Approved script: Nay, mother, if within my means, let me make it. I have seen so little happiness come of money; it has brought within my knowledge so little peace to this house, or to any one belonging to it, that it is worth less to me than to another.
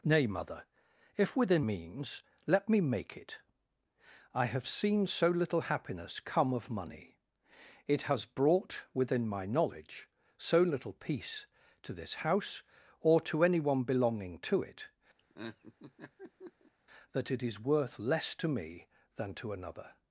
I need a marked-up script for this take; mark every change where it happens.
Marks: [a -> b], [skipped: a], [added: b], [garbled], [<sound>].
Nay, mother, if within [skipped: my] means, let me make it. I have seen so little happiness come of money; it has brought within my knowledge so little peace to this house, or to any one belonging to it, [laugh] that it is worth less to me than to another.